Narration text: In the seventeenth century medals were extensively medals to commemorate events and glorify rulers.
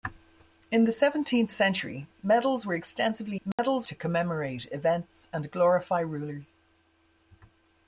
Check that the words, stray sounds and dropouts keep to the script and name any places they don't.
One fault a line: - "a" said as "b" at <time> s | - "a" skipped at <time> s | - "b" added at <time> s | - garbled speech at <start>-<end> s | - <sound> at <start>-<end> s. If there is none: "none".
- dropout at 3.5-3.6 s